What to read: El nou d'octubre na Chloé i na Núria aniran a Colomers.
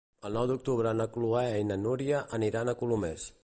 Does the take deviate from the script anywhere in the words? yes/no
no